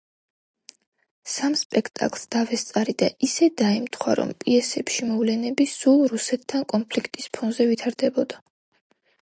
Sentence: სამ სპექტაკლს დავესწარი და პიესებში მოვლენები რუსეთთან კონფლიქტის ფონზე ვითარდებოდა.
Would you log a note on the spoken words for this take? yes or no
yes